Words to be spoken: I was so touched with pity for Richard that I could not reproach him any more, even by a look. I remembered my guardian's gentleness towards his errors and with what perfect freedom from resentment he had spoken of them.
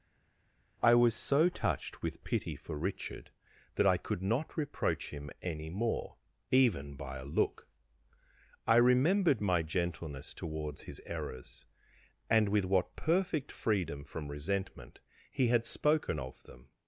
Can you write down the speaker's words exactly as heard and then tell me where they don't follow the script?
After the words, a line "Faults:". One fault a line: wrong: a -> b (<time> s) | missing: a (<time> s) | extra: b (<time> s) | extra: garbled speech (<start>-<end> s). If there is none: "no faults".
I was so touched with pity for Richard that I could not reproach him any more, even by a look. I remembered my gentleness towards his errors and with what perfect freedom from resentment he had spoken of them.
Faults:
missing: guardian's (9.6 s)